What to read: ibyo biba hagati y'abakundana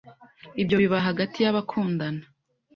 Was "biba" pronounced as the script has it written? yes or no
yes